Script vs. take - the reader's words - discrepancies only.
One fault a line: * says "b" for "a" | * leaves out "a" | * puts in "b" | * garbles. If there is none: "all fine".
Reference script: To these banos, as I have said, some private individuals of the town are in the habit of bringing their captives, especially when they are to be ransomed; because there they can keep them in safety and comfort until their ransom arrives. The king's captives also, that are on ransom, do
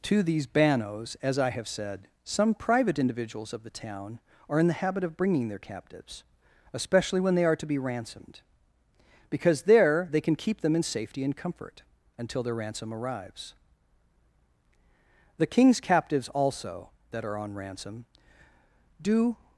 all fine